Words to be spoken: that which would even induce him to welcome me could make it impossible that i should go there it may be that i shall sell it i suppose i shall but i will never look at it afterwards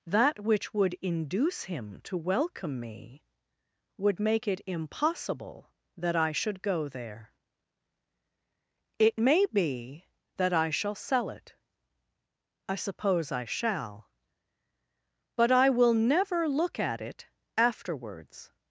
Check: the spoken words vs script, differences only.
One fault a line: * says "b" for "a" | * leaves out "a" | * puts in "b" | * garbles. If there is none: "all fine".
* leaves out "even"
* says "would" for "could"